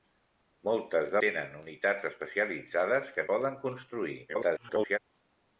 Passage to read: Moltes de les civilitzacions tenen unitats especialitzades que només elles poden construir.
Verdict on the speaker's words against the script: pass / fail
fail